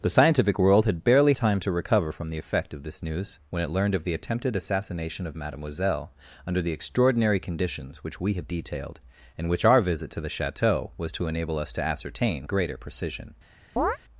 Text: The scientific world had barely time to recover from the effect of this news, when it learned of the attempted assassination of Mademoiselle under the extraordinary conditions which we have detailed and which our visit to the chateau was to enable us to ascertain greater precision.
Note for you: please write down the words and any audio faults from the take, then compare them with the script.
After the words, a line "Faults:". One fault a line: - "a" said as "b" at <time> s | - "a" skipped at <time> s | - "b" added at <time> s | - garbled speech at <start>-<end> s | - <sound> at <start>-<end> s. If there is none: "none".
The scientific world had barely time to recover from the effect of this news, when it learned of the attempted assassination of Mademoiselle under the extraordinary conditions which we have detailed and which our visit to the chateau was to enable us to ascertain greater precision.
Faults:
- chirp at 13.8-14.0 s